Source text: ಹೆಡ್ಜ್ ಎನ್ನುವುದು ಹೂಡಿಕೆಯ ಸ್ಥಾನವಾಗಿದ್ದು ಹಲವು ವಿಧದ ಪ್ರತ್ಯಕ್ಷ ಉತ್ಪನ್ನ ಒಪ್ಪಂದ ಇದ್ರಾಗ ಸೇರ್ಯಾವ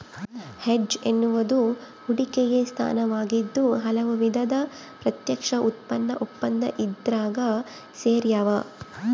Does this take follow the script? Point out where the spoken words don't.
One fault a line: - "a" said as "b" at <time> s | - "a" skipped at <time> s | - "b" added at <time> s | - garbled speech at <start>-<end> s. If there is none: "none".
none